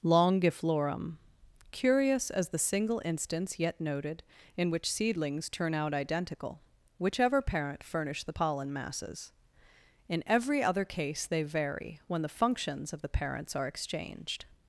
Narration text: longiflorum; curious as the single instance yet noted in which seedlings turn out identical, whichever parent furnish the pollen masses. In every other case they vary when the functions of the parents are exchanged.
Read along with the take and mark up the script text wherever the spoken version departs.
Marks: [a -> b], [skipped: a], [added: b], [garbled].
longiflorum; curious as the single instance yet noted in which seedlings turn out identical, whichever parent furnish the pollen masses. In every other case they vary when the functions of the parents are exchanged.